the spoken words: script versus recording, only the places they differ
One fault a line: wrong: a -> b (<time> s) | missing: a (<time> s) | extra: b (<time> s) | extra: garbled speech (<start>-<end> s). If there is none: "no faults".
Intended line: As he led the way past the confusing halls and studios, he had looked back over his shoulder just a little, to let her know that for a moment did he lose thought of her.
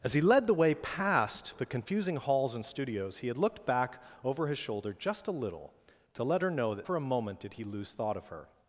no faults